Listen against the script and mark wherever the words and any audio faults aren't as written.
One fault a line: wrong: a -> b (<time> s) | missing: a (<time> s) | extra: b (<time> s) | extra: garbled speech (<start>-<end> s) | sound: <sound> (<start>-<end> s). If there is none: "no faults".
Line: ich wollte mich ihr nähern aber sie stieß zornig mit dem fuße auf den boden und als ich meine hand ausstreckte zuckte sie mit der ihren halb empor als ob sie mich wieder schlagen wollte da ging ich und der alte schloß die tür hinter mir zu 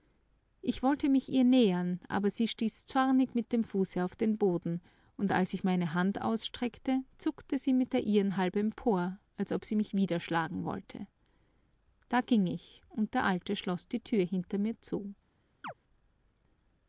sound: chirp (15.6-15.7 s)